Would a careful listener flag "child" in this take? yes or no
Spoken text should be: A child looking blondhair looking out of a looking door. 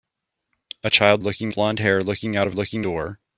no